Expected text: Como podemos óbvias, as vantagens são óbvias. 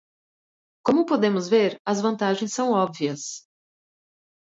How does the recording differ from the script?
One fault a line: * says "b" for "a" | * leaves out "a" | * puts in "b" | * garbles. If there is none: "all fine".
* says "ver" for "óbvias"